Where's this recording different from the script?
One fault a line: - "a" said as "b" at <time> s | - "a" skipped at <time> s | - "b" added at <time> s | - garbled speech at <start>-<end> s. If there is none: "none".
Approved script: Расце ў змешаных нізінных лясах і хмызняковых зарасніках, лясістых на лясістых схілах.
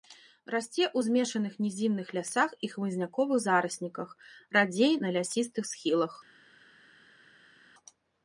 - "лясістых" said as "радзей" at 4.6 s